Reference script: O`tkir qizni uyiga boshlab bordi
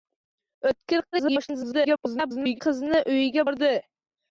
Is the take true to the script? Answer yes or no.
no